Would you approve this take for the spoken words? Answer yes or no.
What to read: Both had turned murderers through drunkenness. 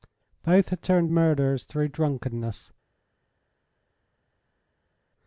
yes